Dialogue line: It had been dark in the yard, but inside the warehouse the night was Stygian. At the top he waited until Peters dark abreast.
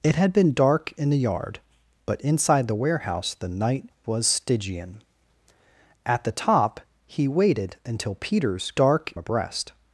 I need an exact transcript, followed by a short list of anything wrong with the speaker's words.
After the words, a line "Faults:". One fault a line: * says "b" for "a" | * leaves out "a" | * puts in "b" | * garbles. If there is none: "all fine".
It had been dark in the yard, but inside the warehouse the night was Stygian. At the top he waited until Peters dark abreast.
Faults:
all fine